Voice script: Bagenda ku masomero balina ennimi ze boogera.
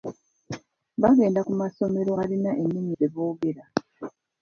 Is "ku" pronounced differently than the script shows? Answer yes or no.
no